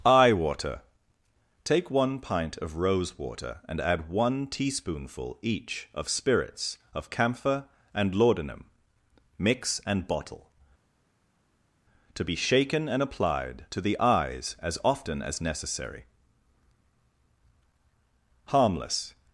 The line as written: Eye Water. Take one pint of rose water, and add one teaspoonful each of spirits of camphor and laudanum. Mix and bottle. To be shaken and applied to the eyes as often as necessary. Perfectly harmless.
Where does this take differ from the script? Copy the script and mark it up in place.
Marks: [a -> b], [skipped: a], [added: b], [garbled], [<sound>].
Eye Water. Take one pint of rose water, and add one teaspoonful each of spirits of camphor and laudanum. Mix and bottle. To be shaken and applied to the eyes as often as necessary. [skipped: Perfectly] harmless.